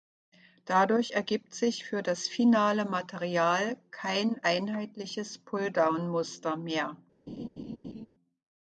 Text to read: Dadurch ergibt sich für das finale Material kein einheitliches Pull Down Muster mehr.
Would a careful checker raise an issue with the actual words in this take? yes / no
no